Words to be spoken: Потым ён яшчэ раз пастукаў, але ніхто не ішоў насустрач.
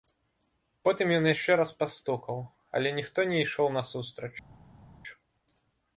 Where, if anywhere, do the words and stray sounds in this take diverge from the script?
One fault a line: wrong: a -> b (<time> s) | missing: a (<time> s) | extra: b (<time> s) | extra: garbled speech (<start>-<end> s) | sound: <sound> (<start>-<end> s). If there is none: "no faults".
no faults